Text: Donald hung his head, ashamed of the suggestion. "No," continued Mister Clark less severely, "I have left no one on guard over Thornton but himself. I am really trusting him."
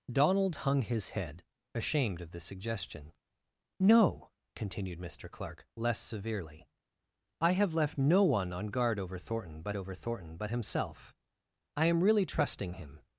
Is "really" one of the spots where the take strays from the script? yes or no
no